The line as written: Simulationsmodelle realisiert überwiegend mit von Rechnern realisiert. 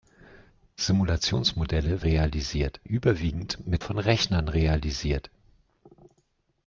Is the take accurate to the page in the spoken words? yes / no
yes